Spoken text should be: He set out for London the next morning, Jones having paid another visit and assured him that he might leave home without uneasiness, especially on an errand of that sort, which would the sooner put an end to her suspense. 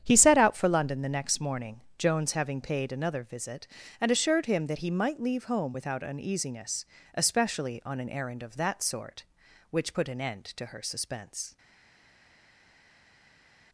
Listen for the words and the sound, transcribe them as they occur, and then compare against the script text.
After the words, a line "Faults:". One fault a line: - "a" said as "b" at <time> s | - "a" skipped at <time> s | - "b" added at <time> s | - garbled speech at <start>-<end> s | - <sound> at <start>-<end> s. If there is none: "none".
He set out for London the next morning, Jones having paid another visit and assured him that he might leave home without uneasiness, especially on an errand of that sort, which put an end to her suspense.
Faults:
- "would the sooner" skipped at 9.9 s